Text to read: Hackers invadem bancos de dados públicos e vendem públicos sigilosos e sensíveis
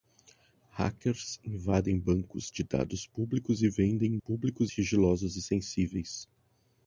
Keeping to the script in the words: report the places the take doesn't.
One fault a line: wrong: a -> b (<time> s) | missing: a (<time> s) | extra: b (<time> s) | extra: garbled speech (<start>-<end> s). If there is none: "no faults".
no faults